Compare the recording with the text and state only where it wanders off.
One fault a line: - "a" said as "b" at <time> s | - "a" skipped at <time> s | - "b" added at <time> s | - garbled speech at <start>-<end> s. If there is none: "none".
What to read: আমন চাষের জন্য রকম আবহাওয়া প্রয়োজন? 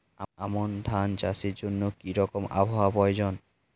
- "ধান" added at 0.8 s
- "কি" added at 2.0 s